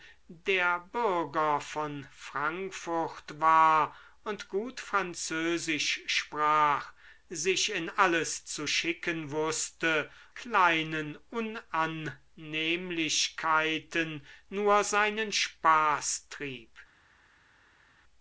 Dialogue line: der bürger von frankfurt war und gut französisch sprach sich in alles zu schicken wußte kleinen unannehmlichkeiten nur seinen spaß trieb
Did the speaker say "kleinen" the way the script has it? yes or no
yes